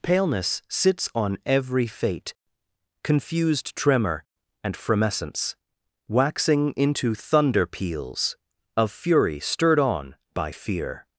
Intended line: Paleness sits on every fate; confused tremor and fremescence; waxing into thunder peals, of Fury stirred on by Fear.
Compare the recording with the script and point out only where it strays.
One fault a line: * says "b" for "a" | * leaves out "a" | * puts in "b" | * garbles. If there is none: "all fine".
all fine